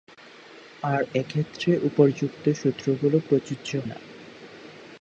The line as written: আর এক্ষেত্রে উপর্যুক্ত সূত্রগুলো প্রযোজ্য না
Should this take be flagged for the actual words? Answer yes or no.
no